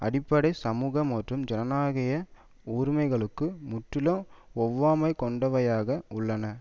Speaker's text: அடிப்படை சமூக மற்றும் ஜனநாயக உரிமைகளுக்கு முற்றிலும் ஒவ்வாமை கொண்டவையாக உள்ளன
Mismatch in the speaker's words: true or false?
false